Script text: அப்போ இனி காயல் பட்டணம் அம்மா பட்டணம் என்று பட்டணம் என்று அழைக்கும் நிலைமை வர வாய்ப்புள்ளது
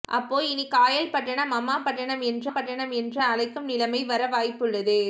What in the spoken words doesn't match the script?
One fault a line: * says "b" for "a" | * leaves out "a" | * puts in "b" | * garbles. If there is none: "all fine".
all fine